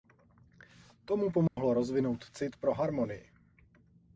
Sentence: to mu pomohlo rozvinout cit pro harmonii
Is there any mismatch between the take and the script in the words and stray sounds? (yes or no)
yes